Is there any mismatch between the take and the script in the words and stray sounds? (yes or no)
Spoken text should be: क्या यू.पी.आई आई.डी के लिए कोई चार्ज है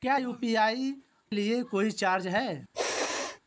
yes